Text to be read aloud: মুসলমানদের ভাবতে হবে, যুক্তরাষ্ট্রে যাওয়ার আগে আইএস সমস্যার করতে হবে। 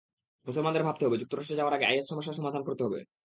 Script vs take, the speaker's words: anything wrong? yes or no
yes